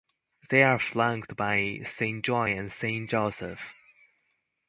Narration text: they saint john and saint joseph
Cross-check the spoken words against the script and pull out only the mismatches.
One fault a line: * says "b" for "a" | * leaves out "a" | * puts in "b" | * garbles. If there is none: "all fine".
* puts in "are flanked by"